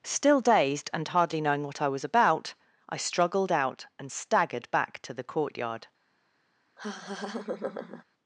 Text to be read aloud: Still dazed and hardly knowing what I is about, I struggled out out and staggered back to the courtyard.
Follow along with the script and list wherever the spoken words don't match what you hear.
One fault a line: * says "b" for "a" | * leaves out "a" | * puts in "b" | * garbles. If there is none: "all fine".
* says "was" for "is"
* leaves out "out"